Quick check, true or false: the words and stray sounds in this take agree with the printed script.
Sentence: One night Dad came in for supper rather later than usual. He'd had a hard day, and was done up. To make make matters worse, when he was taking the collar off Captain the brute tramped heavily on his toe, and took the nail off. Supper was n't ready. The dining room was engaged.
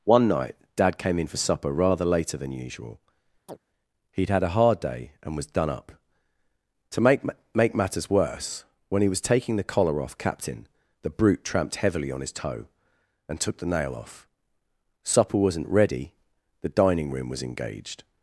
false